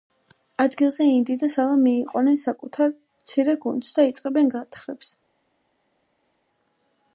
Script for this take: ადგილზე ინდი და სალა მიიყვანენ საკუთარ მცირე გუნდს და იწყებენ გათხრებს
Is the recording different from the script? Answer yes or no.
no